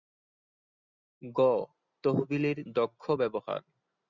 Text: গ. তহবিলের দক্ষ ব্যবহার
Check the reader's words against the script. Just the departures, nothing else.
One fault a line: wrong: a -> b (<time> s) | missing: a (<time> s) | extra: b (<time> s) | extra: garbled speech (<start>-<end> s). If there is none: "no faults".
no faults